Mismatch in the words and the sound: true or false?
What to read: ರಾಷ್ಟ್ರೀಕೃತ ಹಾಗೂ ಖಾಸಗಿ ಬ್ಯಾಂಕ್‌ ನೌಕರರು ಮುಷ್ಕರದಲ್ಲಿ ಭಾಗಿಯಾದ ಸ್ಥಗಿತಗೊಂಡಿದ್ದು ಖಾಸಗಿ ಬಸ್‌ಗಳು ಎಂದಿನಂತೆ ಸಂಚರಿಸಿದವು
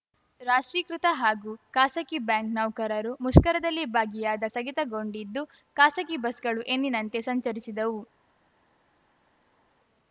false